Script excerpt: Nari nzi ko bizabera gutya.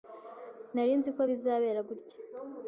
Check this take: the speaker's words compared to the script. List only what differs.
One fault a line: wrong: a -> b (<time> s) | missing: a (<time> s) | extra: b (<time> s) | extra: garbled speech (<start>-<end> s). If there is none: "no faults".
no faults